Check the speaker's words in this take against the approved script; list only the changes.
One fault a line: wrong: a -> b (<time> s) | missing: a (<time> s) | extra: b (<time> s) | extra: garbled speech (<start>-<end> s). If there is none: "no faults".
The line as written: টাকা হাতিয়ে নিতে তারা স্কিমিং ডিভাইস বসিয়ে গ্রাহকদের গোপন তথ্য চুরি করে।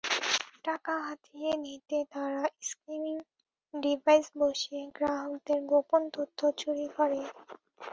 no faults